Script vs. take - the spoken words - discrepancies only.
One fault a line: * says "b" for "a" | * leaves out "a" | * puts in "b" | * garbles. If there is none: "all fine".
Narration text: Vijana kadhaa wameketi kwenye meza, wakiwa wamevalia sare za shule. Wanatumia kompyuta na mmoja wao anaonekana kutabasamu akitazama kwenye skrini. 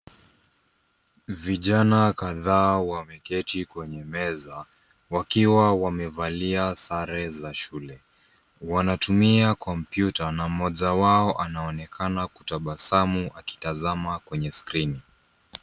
all fine